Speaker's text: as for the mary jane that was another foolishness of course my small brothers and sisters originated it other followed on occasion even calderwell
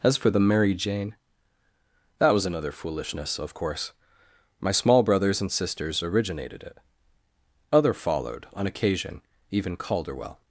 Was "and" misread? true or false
false